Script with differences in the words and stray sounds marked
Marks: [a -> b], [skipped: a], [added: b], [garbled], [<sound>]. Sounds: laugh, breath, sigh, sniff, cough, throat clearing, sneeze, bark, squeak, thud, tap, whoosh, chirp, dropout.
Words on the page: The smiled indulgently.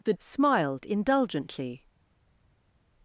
The smiled indulgently.